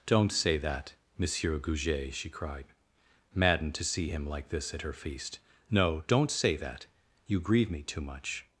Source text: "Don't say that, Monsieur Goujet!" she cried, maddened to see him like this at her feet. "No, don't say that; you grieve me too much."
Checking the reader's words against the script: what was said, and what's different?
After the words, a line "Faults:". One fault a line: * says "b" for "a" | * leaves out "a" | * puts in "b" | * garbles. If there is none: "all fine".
"Don't say that, Monsieur Goujet!" she cried, maddened to see him like this at her feast. "No, don't say that; you grieve me too much."
Faults:
* says "feast" for "feet"